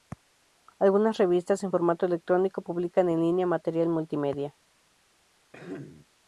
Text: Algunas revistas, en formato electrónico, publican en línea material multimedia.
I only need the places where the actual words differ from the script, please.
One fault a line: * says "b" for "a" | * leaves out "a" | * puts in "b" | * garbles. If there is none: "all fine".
all fine